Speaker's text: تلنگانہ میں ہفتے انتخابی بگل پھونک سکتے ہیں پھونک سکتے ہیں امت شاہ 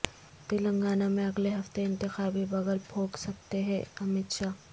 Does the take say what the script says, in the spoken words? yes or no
no